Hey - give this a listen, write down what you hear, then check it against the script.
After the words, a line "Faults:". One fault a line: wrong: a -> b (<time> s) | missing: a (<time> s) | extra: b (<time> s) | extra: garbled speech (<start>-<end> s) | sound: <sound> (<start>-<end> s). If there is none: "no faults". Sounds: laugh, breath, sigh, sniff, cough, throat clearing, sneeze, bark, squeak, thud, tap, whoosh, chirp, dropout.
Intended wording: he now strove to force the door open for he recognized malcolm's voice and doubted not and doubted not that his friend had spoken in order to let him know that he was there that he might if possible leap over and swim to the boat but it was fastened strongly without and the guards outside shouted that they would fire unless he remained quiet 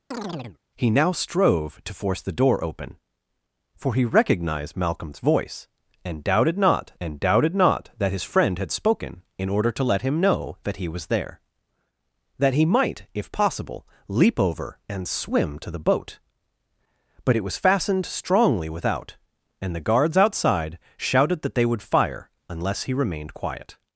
he now strove to force the door open for he recognized malcolm's voice and doubted not and doubted not that his friend had spoken in order to let him know that he was there that he might if possible leap over and swim to the boat but it was fastened strongly without and the guards outside shouted that they would fire unless he remained quiet
Faults:
sound: chirp (0.1-0.6 s)